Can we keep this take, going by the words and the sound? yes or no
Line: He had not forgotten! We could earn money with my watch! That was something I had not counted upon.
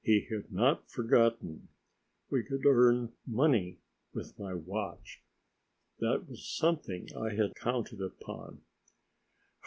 no